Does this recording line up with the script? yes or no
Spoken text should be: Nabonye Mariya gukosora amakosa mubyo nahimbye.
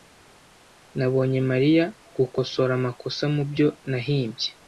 yes